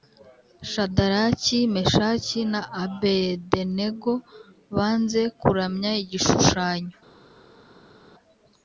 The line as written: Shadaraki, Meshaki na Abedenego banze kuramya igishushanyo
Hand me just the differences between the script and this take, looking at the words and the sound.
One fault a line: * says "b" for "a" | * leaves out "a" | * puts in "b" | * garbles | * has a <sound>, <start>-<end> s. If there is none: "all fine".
all fine